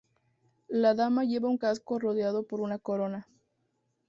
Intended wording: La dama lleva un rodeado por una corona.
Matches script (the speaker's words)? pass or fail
fail